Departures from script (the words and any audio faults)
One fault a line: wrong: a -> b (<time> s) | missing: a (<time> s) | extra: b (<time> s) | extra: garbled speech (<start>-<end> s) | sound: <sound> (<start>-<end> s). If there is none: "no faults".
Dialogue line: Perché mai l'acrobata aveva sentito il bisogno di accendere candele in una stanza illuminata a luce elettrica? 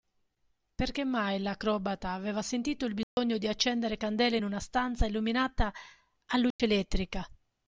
sound: dropout (3.0-3.2 s)
sound: dropout (6.5-6.6 s)